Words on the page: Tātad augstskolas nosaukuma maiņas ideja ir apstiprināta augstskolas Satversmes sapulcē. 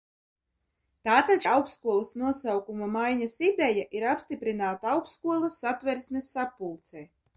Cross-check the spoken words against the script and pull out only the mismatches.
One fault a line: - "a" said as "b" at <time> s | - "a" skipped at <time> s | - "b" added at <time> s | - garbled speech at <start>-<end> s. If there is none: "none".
none